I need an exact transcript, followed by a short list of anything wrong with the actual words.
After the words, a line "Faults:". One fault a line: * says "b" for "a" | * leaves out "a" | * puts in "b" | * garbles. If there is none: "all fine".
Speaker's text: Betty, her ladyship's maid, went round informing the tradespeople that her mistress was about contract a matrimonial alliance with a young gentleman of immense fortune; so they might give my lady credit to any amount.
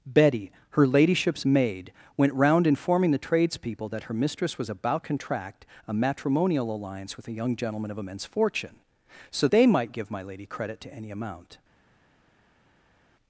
Betty, her ladyship's maid, went round informing the tradespeople that her mistress was about contract a matrimonial alliance with a young gentleman of immense fortune; so they might give my lady credit to any amount.
Faults:
all fine